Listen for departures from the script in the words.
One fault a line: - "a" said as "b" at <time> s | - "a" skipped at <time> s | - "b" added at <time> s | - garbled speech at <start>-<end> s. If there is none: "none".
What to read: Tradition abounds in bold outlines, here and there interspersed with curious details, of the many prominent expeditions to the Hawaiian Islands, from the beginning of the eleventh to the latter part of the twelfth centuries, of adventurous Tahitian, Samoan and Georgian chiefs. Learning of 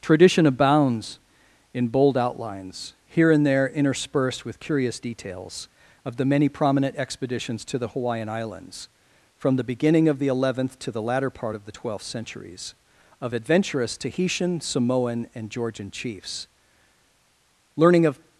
none